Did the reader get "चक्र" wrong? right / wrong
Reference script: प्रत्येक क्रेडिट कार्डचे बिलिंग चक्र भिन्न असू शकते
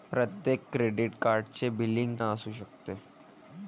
wrong